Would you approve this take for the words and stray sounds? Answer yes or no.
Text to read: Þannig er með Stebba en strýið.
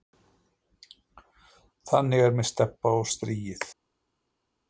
no